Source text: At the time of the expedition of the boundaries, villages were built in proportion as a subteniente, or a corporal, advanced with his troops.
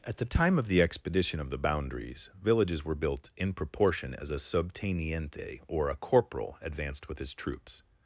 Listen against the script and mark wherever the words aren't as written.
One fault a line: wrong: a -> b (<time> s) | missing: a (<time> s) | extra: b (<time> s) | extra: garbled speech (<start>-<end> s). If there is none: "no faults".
no faults